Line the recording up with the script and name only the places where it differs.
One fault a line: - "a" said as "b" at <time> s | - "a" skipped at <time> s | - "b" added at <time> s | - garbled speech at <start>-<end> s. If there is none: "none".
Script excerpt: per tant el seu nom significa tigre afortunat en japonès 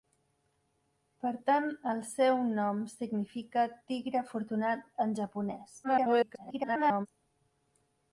- garbled speech at 5.8-7.1 s